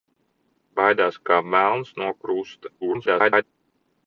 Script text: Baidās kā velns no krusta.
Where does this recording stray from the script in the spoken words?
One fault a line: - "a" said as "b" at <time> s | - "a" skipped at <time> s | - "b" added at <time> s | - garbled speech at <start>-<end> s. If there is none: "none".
- garbled speech at 2.8-3.4 s